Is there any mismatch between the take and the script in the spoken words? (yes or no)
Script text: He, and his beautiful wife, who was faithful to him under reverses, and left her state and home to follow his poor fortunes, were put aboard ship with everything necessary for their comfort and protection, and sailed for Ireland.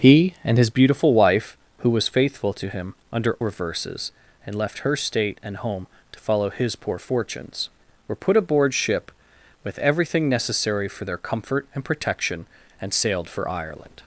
no